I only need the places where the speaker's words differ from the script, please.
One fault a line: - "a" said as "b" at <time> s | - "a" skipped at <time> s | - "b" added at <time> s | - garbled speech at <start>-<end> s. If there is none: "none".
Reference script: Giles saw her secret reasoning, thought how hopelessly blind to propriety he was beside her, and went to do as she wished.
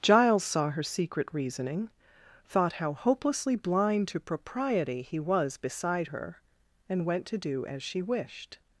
none